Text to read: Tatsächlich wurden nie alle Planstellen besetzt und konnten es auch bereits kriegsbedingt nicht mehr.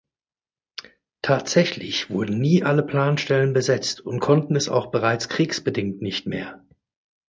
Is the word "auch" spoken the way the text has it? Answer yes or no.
yes